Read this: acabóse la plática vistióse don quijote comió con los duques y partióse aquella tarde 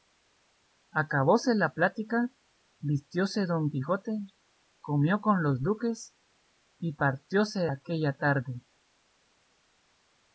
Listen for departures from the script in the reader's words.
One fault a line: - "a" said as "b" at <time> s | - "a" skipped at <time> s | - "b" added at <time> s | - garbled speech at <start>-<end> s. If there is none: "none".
none